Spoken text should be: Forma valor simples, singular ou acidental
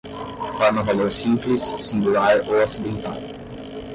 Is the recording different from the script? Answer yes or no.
no